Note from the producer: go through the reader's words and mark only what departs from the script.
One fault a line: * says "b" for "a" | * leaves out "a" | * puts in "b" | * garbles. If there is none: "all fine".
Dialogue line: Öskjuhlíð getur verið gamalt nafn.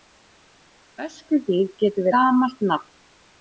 * leaves out "verið"